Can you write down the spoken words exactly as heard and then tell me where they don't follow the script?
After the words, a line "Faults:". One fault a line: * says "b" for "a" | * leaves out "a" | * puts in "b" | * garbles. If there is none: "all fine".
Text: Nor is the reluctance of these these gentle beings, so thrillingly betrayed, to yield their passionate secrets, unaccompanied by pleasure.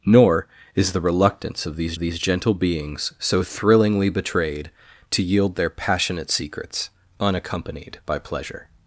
Nor is the reluctance of these these gentle beings, so thrillingly betrayed, to yield their passionate secrets, unaccompanied by pleasure.
Faults:
all fine